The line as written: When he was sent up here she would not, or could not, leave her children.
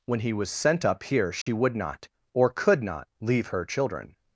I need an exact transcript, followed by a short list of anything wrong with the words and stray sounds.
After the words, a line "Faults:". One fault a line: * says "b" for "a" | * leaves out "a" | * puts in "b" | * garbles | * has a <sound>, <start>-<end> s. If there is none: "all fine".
When he was sent up here she would not, or could not, leave her children.
Faults:
* has a dropout, 1.4-1.5 s